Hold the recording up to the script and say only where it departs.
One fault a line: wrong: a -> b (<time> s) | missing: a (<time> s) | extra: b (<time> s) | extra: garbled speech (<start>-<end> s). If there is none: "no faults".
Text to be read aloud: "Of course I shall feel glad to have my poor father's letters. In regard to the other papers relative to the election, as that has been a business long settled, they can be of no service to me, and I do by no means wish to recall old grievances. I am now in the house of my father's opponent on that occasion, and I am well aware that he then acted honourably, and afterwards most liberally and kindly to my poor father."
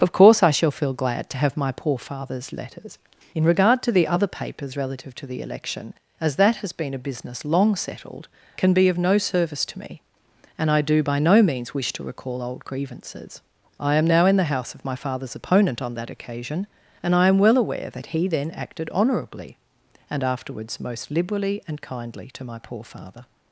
missing: they (8.3 s)